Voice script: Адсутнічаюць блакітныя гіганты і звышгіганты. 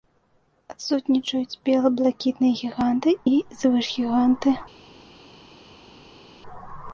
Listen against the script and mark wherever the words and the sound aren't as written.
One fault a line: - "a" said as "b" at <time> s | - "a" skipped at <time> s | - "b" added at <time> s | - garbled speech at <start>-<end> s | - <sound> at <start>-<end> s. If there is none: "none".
- "бела" added at 1.7 s